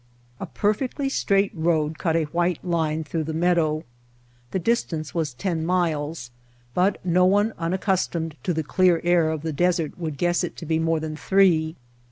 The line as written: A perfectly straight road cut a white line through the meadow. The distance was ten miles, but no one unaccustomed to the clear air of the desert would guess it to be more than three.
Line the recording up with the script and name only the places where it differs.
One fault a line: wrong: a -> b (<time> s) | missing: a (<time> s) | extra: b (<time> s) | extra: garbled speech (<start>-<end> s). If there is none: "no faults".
no faults